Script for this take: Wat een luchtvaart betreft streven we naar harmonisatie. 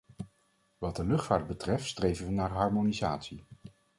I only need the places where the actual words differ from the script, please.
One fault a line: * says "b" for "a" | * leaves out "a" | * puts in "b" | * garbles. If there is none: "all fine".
* says "de" for "een"